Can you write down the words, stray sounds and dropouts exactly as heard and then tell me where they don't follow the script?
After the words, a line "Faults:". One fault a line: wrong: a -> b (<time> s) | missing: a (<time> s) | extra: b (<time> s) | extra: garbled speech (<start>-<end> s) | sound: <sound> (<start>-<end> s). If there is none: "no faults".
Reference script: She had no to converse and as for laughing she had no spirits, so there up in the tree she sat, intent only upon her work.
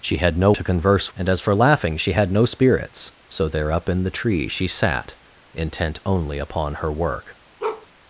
She had no to converse and as for laughing she had no spirits, so there up in the tree she sat, intent only upon her work.
Faults:
sound: bark (7.6-7.9 s)